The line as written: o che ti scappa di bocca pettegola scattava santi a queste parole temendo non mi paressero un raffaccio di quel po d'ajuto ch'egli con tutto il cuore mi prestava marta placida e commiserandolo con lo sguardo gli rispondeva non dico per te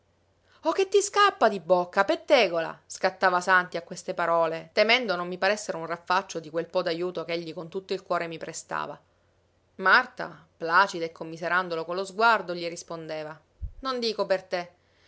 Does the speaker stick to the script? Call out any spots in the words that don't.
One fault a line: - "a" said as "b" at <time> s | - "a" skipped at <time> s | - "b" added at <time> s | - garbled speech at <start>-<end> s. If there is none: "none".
none